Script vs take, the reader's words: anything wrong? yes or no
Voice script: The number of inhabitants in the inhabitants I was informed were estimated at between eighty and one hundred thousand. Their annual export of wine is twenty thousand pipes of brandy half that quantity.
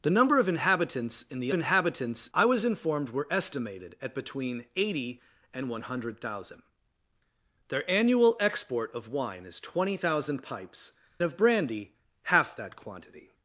no